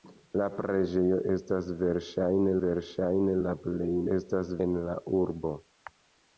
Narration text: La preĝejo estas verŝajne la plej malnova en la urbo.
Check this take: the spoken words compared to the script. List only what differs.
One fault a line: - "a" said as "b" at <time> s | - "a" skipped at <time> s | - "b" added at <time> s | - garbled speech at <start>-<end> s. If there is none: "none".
- "verŝajne" added at 2.6 s
- "malnova" said as "estas" at 4.1 s